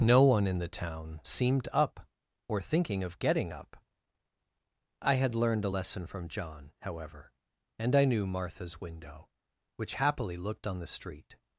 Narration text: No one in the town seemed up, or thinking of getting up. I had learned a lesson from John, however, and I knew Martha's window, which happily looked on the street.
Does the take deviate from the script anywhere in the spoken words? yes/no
no